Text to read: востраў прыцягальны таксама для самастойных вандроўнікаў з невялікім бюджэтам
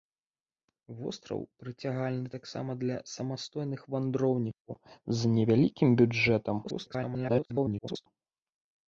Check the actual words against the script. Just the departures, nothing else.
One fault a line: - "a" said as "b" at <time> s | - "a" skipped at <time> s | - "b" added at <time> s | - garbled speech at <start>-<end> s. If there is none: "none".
- garbled speech at 6.6-8.1 s